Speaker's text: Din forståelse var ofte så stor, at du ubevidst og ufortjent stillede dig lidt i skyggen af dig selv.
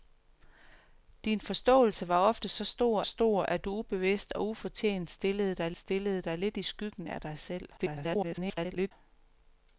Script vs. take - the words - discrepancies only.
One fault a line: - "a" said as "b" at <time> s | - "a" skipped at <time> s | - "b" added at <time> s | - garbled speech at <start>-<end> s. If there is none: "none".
- "stor" added at 3.0 s
- "stillede dig" added at 5.8 s
- garbled speech at 7.8-8.9 s